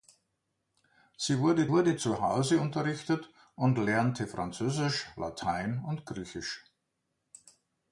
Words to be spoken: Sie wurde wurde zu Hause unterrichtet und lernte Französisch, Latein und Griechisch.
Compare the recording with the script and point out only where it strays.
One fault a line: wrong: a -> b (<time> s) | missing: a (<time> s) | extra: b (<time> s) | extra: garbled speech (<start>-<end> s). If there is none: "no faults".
no faults